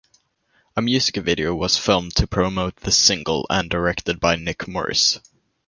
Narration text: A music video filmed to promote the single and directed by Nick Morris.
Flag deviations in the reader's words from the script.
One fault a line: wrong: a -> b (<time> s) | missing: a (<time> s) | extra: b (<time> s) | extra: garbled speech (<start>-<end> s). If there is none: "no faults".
extra: was (1.5 s)